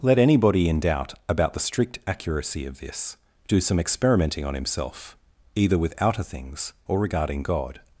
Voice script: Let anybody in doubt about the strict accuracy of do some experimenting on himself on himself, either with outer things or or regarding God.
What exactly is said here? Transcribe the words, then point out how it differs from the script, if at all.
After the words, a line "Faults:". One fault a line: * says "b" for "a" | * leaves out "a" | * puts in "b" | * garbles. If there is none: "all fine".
Let anybody in doubt about the strict accuracy of this do some experimenting on himself, either with outer things or regarding God.
Faults:
* puts in "this"
* leaves out "on himself"
* leaves out "or"